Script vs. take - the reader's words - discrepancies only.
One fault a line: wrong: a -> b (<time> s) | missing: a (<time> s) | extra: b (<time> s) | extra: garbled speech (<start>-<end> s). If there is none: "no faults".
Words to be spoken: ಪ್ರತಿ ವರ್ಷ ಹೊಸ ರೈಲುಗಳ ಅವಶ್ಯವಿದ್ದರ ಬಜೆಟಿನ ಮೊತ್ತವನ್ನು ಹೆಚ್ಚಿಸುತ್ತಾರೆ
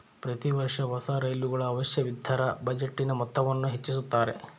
no faults